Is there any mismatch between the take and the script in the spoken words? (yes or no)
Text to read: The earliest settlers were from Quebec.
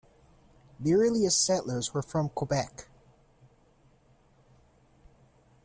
no